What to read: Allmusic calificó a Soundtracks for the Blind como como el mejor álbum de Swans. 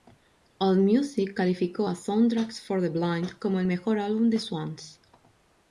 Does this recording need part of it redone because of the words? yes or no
yes